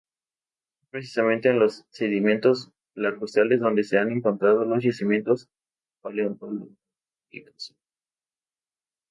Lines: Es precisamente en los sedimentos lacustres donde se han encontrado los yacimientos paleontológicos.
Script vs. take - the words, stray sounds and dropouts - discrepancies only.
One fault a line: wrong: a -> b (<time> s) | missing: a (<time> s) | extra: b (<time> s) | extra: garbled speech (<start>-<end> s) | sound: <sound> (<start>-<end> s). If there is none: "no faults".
no faults